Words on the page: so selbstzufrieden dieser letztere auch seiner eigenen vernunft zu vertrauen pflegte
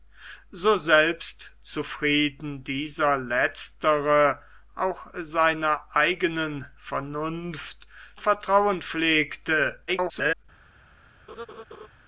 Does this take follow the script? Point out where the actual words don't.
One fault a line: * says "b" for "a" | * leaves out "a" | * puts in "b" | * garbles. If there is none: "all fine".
* leaves out "zu"
* garbles